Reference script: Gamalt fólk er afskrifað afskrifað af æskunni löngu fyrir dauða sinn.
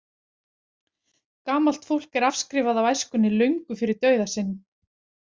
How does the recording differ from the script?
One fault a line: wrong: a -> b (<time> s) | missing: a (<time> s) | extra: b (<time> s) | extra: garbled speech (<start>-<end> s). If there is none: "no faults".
missing: afskrifað (2.8 s)